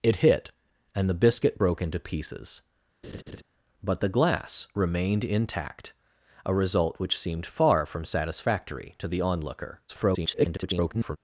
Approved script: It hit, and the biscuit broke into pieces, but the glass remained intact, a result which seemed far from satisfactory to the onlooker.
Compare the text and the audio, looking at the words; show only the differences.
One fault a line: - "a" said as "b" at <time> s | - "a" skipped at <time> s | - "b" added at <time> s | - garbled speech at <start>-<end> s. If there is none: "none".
- garbled speech at 9.9-11.2 s